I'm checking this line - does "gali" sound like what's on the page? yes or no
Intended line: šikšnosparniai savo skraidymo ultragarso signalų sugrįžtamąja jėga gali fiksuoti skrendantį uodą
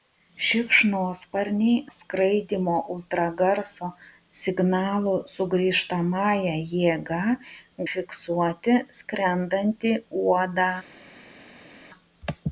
no